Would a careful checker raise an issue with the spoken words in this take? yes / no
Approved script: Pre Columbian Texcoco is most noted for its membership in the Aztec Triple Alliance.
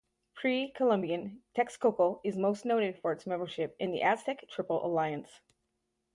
no